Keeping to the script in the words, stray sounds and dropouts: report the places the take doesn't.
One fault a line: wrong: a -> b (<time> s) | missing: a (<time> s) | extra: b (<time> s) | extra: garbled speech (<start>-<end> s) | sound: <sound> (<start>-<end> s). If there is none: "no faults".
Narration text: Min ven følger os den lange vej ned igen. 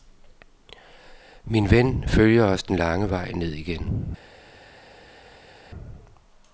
no faults